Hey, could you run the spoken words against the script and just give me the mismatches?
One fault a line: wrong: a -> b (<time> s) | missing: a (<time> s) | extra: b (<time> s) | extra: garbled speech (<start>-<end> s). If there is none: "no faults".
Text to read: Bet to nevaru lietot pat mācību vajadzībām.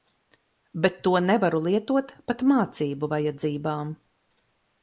no faults